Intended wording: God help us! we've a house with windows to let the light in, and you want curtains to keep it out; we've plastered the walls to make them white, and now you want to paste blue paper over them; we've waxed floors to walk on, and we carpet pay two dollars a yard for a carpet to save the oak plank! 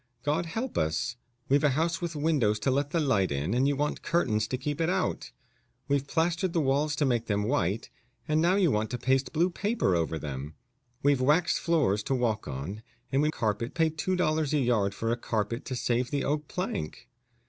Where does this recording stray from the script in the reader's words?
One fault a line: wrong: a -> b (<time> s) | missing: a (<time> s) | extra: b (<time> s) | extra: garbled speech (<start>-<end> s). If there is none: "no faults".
no faults